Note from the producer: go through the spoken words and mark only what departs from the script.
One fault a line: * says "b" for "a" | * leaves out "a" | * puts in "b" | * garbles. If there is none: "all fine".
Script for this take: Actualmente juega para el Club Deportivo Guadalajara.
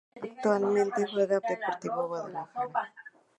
* leaves out "para el Club"